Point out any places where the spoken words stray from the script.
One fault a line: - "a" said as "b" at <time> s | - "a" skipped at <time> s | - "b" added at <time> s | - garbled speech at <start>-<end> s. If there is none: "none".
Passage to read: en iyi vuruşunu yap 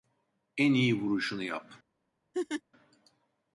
none